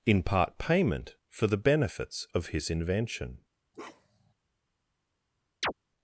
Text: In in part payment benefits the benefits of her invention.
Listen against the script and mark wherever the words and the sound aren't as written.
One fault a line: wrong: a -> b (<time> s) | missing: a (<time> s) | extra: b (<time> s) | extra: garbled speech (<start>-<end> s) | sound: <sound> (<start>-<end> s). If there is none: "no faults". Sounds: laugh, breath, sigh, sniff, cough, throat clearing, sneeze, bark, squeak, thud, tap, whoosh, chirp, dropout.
missing: in (0.2 s)
wrong: benefits -> for (1.3 s)
wrong: her -> his (2.5 s)
sound: bark (3.7-4.3 s)
sound: chirp (5.6-5.7 s)